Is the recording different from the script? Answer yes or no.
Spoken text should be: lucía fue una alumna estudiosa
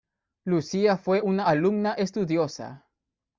no